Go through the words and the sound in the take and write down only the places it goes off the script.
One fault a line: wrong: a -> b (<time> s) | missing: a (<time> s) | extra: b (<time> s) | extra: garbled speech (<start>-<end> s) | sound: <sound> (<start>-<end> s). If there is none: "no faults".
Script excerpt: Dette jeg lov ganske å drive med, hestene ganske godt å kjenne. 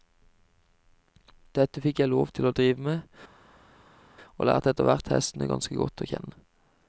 extra: fikk (1.8 s)
wrong: ganske -> til (2.4 s)
extra: og lærte etterhvert (4.4 s)